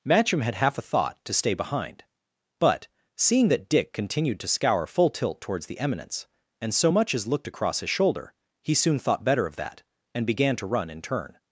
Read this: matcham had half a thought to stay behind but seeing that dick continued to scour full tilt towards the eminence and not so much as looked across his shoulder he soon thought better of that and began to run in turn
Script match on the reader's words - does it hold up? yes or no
no